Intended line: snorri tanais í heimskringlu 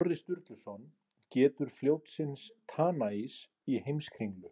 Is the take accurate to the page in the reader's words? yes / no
no